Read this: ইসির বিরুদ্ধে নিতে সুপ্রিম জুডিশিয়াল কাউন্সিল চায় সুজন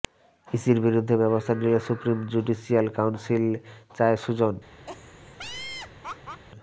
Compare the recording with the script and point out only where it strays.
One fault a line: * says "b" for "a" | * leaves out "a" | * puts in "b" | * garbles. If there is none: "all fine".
* puts in "ব্যবস্থা"